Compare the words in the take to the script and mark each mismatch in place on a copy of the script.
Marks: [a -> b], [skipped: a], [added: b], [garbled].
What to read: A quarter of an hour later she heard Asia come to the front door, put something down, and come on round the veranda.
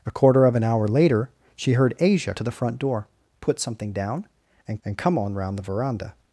A quarter of an hour later she heard Asia [skipped: come] to the front door, put something down, and [added: and] come on round the veranda.